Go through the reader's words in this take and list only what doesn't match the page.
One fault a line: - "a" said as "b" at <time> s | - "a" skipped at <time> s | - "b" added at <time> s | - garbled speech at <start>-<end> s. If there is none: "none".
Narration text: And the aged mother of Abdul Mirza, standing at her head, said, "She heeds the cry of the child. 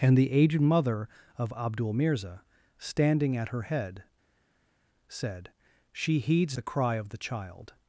none